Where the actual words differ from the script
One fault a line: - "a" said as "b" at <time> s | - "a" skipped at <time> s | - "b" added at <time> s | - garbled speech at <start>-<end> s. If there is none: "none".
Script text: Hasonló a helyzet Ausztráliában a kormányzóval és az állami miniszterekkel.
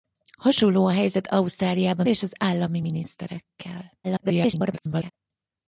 - "a kormányzóval" skipped at 2.1 s
- garbled speech at 4.0-5.1 s